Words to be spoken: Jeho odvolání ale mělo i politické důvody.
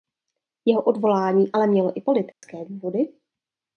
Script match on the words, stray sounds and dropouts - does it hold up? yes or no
no